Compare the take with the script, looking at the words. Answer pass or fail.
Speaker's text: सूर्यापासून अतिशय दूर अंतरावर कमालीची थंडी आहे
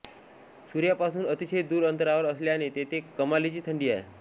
fail